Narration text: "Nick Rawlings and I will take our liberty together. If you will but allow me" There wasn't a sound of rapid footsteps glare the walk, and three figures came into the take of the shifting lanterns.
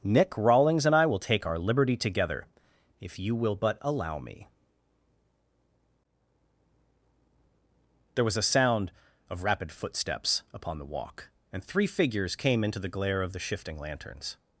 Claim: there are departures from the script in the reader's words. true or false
true